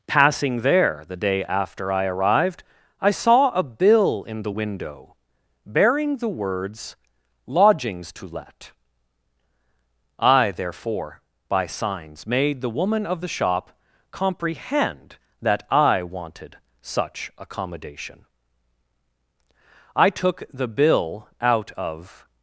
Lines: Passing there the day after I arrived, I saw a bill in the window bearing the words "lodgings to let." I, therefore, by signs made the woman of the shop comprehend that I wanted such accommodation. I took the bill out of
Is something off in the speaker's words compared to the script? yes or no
no